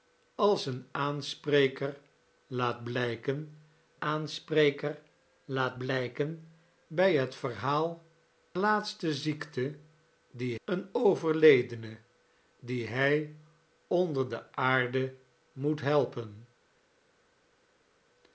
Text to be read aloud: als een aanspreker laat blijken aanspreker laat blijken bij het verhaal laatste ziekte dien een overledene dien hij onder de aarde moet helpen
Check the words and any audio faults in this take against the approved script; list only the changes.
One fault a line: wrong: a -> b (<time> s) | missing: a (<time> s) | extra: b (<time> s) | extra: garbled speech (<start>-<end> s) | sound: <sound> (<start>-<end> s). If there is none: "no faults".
no faults